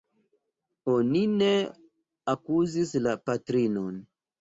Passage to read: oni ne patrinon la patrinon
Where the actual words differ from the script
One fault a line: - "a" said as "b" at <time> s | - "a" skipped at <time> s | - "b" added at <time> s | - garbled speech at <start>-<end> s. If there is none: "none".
- "patrinon" said as "akuzis" at 2.4 s